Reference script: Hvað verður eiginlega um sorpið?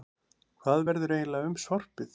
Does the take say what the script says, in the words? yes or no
yes